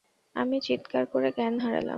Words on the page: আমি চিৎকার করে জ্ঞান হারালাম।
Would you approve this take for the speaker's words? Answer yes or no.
yes